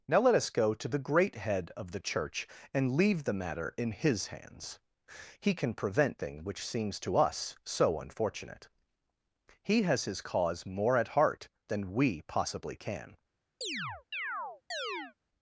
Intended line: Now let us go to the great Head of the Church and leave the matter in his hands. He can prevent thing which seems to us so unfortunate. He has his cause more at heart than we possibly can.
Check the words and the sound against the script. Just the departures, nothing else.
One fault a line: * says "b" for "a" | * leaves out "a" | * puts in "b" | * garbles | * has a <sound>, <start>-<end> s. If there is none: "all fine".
* has a chirp, 13.6-15.1 s